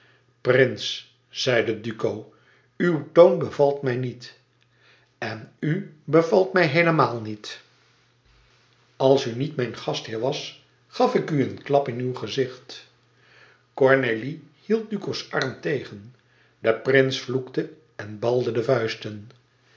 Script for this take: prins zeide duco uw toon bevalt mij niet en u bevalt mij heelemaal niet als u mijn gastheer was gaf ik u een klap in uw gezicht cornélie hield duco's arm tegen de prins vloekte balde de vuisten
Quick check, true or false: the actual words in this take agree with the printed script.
false